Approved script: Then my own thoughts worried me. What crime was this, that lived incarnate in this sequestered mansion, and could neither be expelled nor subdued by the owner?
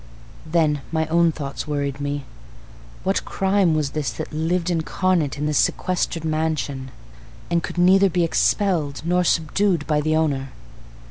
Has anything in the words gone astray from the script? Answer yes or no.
no